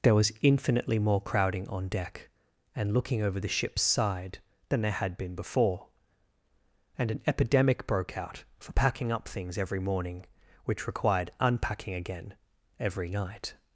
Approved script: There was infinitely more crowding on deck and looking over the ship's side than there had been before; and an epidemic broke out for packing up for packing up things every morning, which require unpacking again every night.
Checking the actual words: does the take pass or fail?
fail